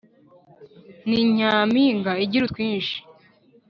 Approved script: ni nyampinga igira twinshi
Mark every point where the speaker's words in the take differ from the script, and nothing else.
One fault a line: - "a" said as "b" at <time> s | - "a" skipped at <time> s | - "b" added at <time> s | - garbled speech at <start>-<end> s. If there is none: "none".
none